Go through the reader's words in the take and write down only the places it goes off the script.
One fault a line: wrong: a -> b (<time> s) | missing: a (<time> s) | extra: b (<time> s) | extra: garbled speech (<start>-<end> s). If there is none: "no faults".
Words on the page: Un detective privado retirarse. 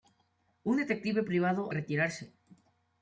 no faults